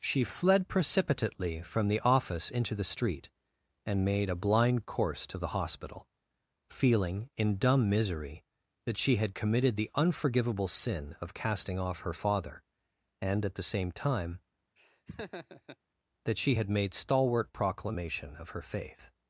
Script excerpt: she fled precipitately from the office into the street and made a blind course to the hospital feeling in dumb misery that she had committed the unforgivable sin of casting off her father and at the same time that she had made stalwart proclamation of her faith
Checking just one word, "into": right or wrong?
right